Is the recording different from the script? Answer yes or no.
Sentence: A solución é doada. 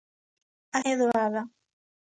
yes